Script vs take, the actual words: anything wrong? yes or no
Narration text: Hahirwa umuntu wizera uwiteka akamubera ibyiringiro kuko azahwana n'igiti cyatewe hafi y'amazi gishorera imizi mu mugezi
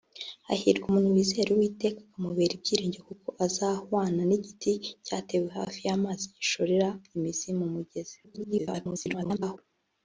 yes